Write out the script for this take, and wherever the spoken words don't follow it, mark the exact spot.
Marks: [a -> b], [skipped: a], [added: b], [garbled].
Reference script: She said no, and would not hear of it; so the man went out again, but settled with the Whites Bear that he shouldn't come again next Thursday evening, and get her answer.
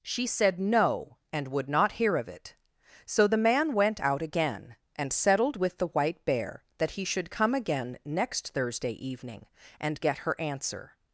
She said no, and would not hear of it; so the man went out again, [but -> and] settled with the [Whites -> White] Bear that he [shouldn't -> should] come again next Thursday evening, and get her answer.